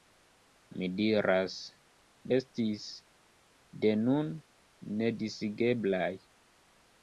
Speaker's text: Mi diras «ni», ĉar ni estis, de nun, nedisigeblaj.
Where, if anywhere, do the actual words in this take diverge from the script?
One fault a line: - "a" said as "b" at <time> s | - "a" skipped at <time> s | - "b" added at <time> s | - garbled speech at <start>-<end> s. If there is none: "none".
- "ni ĉar ni" skipped at 1.6 s